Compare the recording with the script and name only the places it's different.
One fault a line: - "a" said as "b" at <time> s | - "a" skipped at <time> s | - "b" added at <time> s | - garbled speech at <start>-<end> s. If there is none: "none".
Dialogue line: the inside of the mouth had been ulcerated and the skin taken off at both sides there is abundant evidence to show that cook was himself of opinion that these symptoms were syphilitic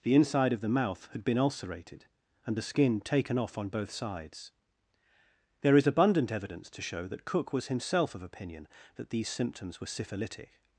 - "at" said as "on" at 3.6 s